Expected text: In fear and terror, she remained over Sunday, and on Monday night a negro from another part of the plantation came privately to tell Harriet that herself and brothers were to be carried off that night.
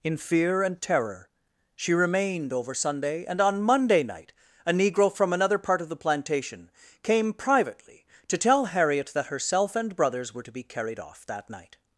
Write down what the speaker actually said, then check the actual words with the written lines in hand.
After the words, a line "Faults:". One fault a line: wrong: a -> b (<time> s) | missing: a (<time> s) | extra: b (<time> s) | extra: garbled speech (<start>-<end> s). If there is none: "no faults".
In fear and terror, she remained over Sunday, and on Monday night a negro from another part of the plantation came privately to tell Harriet that herself and brothers were to be carried off that night.
Faults:
no faults